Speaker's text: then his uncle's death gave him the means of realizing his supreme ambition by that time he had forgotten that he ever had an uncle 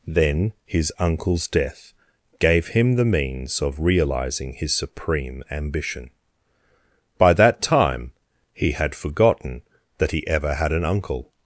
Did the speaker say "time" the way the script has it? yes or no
yes